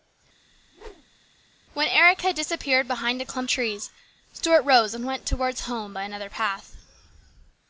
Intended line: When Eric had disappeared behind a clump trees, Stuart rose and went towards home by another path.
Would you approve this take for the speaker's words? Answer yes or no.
yes